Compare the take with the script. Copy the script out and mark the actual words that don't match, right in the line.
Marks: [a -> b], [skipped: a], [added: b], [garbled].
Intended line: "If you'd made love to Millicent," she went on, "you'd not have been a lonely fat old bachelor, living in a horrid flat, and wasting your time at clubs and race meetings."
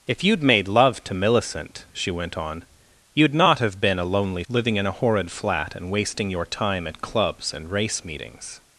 "If you'd made love to Millicent," she went on, "you'd not have been a lonely [skipped: fat old bachelor,] living in a horrid flat, and wasting your time at clubs and race meetings."